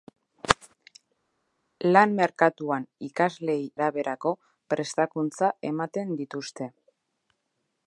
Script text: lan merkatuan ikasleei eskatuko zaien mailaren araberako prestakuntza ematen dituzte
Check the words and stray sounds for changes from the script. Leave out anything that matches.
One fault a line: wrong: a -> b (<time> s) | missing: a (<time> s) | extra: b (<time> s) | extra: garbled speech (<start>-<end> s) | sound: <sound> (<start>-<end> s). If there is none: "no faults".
missing: eskatuko zaien mailaren (3.7 s)